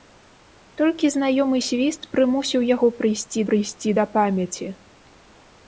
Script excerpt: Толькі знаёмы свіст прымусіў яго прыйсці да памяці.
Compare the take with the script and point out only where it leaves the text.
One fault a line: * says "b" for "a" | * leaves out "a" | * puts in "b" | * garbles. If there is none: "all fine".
* puts in "прыйсці"